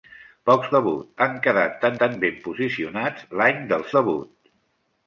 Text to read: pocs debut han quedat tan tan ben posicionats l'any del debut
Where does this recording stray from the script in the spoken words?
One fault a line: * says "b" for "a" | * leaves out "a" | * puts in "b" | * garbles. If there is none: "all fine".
all fine